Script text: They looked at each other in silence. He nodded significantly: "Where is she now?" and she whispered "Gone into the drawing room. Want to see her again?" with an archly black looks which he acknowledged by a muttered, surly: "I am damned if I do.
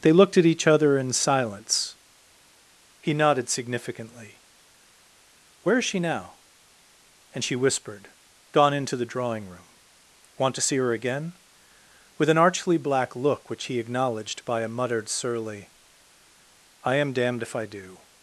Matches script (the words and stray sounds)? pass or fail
fail